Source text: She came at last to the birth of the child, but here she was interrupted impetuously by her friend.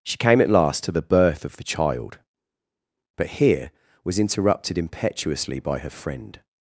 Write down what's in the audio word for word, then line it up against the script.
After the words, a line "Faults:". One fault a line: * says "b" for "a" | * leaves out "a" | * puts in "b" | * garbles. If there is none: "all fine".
She came at last to the birth of the child, but here was interrupted impetuously by her friend.
Faults:
* leaves out "she"